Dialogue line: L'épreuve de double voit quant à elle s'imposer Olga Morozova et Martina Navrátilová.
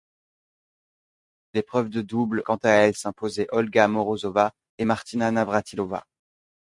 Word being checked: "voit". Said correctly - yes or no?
no